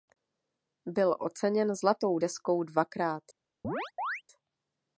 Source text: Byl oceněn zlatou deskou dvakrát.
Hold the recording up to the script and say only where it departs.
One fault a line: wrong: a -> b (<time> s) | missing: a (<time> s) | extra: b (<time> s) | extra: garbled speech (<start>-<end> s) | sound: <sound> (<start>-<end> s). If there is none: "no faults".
sound: chirp (3.6-4.2 s)